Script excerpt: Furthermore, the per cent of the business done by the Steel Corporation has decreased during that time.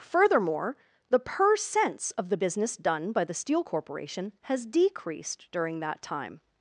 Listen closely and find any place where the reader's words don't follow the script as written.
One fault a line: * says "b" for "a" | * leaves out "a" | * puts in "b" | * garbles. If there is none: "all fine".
* says "cents" for "cent"